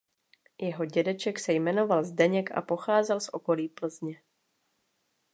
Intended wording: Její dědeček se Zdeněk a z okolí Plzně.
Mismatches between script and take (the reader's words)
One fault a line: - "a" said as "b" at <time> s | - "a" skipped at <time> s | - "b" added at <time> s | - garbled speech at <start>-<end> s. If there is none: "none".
- "Její" said as "Jeho" at 0.6 s
- "jmenoval" added at 1.5 s
- "pocházel" added at 2.6 s